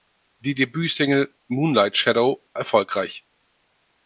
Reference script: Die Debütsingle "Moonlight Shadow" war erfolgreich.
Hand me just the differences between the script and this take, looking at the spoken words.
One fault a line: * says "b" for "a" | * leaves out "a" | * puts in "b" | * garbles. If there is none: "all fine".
* leaves out "war"